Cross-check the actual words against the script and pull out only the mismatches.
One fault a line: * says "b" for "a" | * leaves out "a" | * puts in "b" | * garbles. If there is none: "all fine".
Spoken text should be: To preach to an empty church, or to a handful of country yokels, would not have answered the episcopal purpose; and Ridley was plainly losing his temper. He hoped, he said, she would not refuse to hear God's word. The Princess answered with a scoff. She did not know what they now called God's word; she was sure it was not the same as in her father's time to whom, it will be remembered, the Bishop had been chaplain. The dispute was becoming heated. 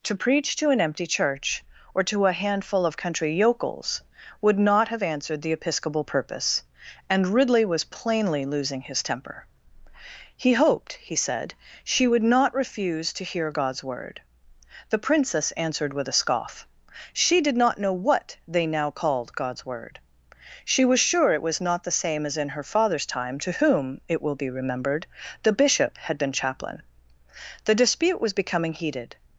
all fine